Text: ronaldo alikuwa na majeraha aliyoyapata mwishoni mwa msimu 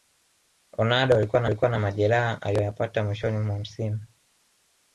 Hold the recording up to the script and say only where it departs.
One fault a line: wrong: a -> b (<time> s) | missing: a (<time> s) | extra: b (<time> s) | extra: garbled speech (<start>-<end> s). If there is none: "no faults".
extra: alikuwa na (1.5 s)